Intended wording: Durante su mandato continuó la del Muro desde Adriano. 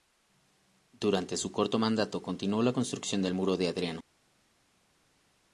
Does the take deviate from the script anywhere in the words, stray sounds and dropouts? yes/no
yes